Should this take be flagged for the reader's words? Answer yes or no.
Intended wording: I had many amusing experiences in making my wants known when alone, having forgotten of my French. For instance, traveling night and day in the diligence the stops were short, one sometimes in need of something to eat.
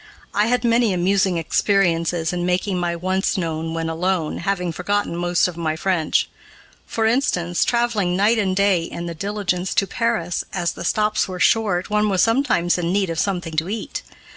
yes